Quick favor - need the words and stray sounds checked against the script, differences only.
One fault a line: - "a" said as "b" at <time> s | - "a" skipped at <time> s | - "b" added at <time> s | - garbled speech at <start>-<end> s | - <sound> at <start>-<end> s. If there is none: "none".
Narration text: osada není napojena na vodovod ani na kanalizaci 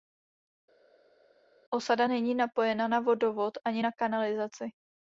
none